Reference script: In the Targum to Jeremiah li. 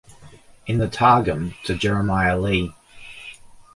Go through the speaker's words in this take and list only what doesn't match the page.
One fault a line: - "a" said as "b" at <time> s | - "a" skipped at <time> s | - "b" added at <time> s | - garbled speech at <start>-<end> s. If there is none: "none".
none